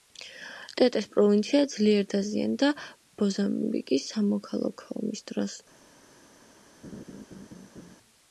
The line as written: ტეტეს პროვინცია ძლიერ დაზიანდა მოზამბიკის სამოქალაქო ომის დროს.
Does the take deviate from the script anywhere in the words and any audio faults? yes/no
yes